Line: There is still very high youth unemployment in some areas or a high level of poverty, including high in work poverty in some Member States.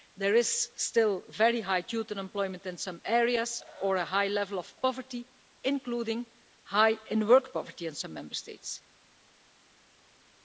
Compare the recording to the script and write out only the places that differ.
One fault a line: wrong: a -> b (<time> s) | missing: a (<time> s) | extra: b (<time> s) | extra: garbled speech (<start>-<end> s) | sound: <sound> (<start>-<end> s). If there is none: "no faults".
no faults